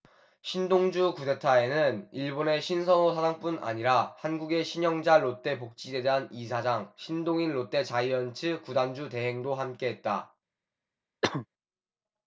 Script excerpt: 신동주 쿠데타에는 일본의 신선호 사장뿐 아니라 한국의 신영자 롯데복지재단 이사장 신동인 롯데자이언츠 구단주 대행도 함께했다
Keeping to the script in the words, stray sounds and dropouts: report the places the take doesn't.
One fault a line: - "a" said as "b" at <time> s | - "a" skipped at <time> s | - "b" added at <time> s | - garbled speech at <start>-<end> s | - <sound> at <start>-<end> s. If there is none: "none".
- cough at 11.2-11.5 s